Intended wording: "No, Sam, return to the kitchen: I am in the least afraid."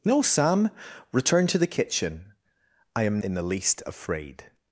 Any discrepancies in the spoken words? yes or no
no